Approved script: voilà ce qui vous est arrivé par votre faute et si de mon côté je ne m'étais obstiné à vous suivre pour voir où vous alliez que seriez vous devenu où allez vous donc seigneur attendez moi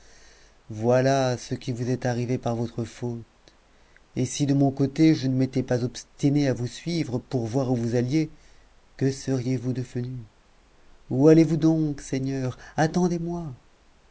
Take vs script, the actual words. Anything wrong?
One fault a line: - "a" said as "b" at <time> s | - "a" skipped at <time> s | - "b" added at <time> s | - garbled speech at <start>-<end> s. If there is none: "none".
- "pas" added at 5.6 s